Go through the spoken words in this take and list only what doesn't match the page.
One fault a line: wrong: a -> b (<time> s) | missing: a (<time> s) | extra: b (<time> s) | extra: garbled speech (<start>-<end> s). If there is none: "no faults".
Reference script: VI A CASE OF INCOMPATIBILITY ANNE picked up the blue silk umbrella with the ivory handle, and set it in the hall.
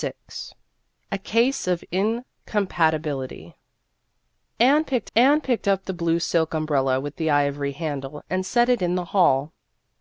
extra: ANNE picked (5.1 s)